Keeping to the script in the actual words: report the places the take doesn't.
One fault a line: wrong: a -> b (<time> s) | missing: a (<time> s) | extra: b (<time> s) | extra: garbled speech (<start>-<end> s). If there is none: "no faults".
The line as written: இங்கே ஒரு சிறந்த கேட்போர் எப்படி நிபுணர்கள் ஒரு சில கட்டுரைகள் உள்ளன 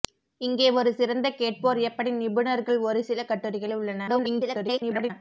extra: garbled speech (4.1-5.1 s)